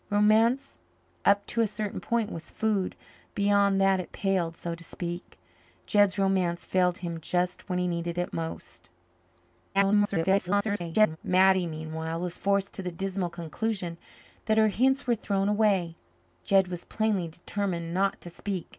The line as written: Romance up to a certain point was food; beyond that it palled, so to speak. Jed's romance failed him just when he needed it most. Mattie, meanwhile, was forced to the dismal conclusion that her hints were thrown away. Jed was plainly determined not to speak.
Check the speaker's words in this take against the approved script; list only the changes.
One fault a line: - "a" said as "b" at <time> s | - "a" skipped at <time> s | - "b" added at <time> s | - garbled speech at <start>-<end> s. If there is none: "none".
- garbled speech at 9.7-11.2 s